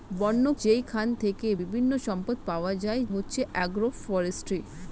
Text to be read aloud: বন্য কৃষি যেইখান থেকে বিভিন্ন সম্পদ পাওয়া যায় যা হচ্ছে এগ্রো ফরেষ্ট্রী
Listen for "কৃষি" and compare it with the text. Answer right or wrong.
wrong